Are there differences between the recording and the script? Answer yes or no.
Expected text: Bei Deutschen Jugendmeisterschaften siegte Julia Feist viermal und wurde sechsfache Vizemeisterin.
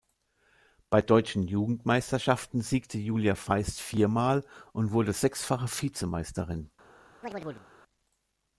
no